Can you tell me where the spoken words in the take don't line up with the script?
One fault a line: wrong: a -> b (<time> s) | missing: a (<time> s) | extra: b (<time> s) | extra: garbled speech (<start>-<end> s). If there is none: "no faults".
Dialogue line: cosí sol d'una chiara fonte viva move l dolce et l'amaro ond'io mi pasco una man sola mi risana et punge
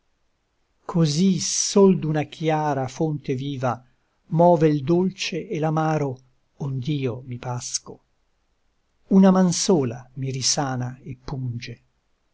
no faults